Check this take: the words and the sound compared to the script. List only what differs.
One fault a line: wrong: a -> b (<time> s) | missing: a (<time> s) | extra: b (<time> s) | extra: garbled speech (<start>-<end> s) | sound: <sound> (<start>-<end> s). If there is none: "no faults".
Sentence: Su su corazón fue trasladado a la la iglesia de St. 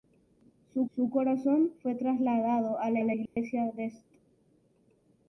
sound: dropout (3.3-3.4 s)